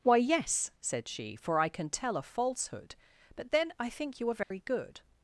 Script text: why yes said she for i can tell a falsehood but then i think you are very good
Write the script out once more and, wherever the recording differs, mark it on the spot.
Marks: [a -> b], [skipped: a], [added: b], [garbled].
why yes said she for i can tell a falsehood but then i think you are very good